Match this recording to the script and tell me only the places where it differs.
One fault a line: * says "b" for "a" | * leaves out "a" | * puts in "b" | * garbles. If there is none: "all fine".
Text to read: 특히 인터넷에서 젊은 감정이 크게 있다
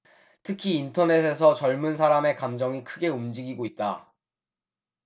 * puts in "사람의"
* puts in "움직이고"